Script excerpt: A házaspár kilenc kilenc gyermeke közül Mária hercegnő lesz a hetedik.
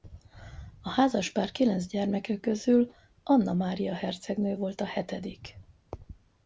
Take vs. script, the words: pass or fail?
fail